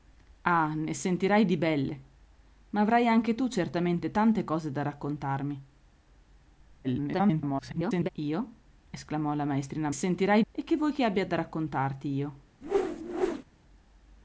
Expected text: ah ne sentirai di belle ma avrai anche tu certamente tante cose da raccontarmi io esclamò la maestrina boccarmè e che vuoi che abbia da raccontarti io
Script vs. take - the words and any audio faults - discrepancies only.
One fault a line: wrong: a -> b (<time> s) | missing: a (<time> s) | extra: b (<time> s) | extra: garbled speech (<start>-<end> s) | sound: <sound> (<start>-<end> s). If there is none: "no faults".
extra: garbled speech (6.8-8.1 s)
wrong: boccarmè -> sentirai (9.9 s)
sound: whoosh (12.6-13.4 s)